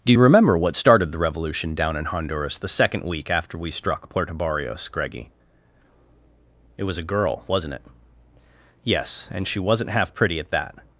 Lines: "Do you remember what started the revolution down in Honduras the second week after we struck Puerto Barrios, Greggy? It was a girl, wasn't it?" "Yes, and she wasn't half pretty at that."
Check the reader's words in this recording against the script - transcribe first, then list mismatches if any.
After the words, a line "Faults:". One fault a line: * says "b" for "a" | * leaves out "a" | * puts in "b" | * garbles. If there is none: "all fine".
"Do you remember what started the revolution down in Honduras the second week after we struck Puerto Barrios, Greggy? It was a girl, wasn't it?" "Yes, and she wasn't half pretty at that."
Faults:
all fine